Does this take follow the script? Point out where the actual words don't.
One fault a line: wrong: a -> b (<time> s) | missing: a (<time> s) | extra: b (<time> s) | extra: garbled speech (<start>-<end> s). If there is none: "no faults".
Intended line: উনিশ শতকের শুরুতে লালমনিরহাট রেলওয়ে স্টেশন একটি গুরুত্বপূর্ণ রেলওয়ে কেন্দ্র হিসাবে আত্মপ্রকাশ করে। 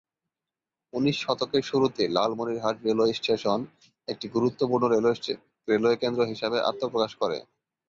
no faults